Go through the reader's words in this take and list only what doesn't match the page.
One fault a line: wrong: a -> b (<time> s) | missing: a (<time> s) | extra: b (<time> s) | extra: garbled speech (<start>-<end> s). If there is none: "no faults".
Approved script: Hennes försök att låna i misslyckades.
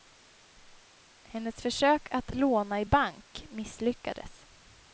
extra: bank (2.8 s)